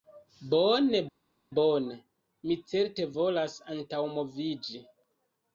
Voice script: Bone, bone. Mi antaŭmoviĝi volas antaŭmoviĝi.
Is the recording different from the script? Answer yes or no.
yes